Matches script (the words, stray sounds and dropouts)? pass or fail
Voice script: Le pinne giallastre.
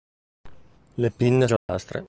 fail